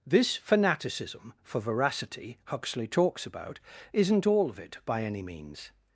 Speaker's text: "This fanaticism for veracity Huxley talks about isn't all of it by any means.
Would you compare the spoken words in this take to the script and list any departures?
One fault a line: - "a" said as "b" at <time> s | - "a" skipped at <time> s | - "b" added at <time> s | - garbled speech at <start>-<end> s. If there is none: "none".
none